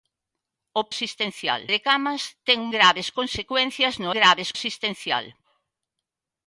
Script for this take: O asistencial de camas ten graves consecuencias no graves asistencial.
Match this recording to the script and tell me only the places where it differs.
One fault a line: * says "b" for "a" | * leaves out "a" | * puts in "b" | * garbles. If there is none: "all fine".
all fine